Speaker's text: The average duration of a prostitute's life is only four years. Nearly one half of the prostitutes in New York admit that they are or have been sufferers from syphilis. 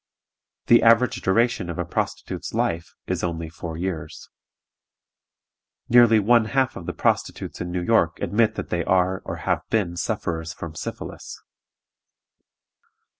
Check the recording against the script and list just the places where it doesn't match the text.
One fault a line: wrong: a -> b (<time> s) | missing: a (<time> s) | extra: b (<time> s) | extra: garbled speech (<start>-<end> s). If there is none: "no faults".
no faults